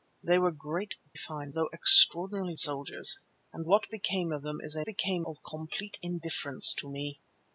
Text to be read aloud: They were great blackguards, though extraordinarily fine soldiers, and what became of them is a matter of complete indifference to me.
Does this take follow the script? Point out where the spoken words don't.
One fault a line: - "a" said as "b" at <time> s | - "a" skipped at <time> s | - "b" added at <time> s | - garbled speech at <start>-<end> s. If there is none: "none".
- "blackguards" said as "fine" at 1.2 s
- "fine" skipped at 2.6 s
- "matter" said as "became" at 4.8 s